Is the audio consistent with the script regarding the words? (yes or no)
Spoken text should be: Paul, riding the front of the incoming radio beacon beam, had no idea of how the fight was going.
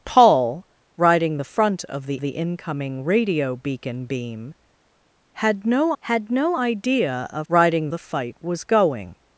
no